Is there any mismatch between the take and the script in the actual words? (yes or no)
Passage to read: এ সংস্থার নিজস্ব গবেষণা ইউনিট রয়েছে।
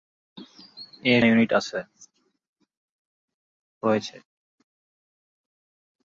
yes